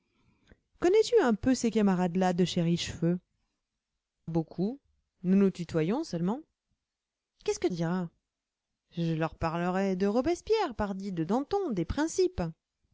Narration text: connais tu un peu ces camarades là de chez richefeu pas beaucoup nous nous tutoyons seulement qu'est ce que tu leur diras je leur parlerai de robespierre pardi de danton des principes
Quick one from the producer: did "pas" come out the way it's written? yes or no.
no